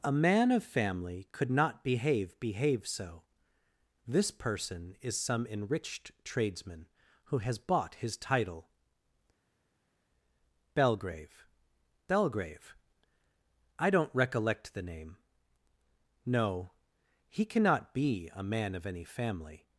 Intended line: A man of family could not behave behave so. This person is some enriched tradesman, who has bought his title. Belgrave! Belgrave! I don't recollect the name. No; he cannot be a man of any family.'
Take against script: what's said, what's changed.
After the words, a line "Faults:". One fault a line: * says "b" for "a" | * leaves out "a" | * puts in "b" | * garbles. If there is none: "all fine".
A man of family could not behave behave so. This person is some enriched tradesman, who has bought his title. Belgrave! Belgrave! I don't recollect the name. No; he cannot be a man of any family.'
Faults:
all fine